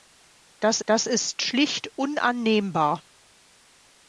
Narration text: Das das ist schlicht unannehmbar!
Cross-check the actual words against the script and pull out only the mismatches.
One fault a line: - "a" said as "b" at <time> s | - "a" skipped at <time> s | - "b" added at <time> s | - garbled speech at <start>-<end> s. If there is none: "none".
none